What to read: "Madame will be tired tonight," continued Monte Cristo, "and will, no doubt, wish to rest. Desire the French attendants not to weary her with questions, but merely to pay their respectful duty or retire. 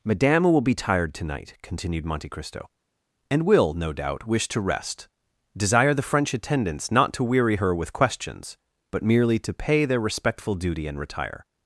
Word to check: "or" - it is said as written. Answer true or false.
false